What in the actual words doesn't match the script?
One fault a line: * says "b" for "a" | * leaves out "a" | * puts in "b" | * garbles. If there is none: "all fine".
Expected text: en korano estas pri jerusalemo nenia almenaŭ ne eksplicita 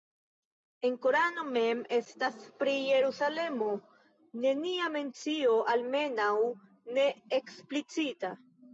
* puts in "mem"
* puts in "mencio"